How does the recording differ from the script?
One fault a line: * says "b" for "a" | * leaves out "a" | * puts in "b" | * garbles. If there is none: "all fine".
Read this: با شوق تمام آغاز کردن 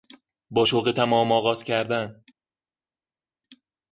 all fine